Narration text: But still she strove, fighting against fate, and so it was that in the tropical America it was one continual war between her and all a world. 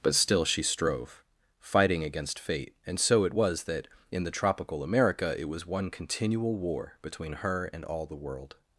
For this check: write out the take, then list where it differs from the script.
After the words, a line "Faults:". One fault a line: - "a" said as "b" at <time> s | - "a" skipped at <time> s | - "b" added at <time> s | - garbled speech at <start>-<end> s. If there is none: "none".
But still she strove, fighting against fate, and so it was that in the tropical America it was one continual war between her and all the world.
Faults:
- "a" said as "the" at 8.0 s